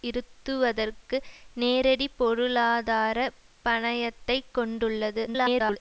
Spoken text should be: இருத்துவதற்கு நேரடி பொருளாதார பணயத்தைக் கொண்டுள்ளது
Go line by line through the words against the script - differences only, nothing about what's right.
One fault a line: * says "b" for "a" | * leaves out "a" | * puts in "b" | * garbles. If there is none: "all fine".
* garbles